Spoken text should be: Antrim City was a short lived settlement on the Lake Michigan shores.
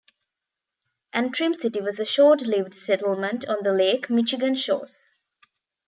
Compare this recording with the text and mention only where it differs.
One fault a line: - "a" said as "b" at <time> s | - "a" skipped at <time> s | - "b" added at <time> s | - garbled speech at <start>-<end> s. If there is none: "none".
none